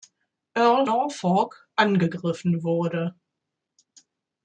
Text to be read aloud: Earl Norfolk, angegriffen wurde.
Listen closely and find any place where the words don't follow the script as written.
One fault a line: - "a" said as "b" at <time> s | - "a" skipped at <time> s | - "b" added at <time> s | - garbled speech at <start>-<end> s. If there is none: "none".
none